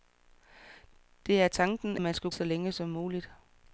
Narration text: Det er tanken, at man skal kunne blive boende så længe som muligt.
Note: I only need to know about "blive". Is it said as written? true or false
false